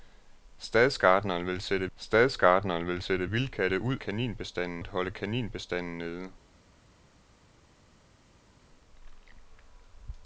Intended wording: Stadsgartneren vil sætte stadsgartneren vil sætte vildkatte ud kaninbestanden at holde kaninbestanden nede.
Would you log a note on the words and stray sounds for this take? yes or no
no